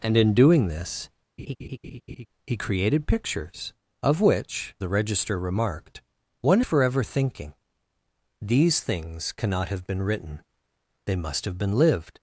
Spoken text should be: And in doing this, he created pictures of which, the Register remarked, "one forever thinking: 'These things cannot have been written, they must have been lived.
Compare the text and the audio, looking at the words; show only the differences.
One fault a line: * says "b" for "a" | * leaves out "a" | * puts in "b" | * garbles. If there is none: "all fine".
all fine